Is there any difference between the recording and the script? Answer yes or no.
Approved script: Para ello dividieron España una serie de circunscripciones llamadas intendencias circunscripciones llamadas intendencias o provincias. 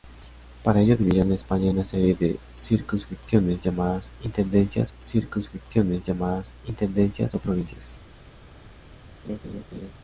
no